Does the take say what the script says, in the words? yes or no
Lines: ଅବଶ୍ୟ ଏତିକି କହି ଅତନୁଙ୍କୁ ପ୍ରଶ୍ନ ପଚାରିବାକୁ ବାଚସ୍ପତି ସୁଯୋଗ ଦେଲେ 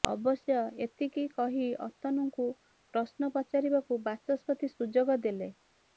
yes